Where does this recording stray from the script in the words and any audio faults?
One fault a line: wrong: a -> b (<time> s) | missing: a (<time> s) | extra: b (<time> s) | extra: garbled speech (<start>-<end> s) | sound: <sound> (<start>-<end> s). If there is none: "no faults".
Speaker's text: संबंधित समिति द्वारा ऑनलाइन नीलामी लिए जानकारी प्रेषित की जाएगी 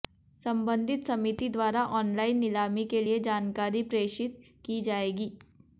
extra: के (2.9 s)